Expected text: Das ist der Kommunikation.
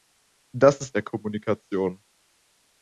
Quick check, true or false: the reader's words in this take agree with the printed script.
true